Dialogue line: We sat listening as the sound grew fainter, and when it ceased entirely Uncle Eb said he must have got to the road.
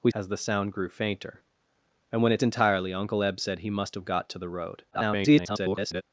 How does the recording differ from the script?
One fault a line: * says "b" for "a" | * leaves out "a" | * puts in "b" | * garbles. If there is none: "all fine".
* leaves out "sat listening"
* leaves out "ceased"
* garbles